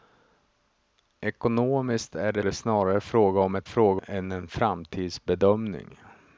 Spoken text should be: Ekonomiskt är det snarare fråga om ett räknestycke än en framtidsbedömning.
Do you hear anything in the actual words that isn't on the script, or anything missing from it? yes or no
yes